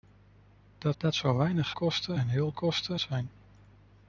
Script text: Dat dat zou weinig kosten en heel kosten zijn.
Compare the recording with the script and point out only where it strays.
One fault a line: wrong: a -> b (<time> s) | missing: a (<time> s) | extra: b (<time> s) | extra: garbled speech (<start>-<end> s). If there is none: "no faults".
no faults